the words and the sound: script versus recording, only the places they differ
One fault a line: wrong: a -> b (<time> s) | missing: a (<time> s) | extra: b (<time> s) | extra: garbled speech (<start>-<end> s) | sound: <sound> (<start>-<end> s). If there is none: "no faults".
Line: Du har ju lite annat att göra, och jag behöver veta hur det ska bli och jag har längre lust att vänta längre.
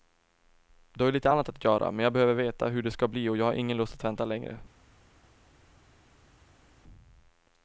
wrong: och -> men (1.9 s)
wrong: längre -> ingen (3.5 s)